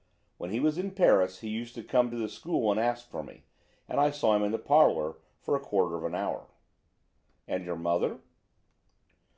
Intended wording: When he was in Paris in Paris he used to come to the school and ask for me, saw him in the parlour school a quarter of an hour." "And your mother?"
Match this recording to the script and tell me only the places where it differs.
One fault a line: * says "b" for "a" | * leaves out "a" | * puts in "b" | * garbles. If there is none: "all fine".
* leaves out "in Paris"
* puts in "and I"
* says "for" for "school"